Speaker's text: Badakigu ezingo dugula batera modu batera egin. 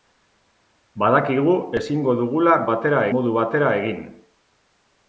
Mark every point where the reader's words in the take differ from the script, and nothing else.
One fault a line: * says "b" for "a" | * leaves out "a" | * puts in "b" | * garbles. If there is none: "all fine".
all fine